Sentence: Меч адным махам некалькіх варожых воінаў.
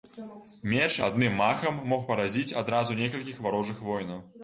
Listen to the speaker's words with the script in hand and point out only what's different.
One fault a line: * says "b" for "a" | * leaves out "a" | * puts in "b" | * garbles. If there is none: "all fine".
* puts in "мог паразіць адразу"